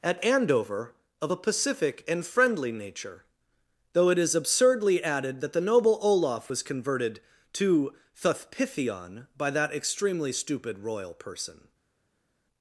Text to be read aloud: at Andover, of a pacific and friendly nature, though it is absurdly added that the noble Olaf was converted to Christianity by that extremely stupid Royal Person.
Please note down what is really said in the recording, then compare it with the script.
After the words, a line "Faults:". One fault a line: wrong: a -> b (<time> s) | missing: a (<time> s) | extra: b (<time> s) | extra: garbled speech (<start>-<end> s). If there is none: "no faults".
at Andover, of a pacific and friendly nature, though it is absurdly added that the noble Olaf was converted to Thuthpithion by that extremely stupid Royal Person.
Faults:
wrong: Christianity -> Thuthpithion (8.2 s)